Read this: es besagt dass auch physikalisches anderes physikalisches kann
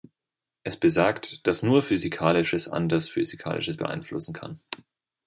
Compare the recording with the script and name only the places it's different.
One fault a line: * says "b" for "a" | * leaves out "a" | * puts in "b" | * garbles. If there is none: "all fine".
* says "nur" for "auch"
* puts in "beeinflussen"